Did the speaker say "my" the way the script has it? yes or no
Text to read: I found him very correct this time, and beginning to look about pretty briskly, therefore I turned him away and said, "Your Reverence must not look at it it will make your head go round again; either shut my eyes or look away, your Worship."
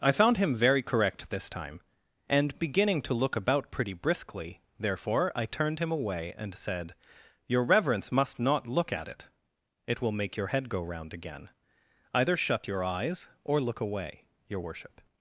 no